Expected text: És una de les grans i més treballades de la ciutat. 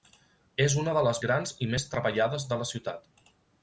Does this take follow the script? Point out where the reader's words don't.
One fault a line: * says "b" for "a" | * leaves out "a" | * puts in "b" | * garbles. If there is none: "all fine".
all fine